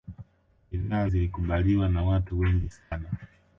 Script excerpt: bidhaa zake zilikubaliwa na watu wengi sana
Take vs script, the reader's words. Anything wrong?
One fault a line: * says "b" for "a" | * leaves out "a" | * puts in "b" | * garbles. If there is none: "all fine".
* leaves out "zake"